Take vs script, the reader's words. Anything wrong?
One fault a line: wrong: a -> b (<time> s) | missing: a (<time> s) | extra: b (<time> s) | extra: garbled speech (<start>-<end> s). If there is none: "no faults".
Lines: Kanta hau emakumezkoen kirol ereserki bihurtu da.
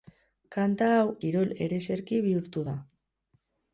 missing: emakumezkoen (1.0 s)